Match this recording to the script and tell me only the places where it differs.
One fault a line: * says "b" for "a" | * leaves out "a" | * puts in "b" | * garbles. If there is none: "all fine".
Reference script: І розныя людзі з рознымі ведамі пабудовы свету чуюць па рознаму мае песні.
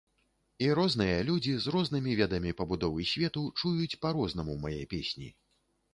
all fine